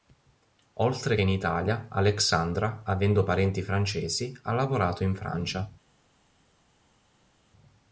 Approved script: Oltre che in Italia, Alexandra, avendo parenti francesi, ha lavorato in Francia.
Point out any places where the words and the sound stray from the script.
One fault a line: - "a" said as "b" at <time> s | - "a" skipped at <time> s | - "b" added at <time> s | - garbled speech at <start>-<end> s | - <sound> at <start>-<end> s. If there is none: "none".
- "che" skipped at 1.1 s